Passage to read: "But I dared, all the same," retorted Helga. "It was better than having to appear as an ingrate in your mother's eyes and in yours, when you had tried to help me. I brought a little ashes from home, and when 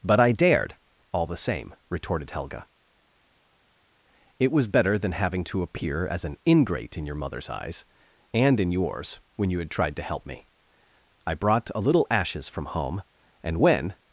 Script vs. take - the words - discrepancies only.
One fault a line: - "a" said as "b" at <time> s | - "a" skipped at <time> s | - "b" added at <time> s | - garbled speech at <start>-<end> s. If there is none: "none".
none